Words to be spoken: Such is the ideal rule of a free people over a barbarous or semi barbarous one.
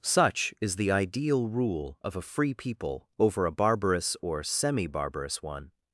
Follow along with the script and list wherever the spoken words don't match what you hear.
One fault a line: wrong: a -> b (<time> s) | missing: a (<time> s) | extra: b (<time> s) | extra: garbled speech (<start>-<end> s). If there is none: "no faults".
no faults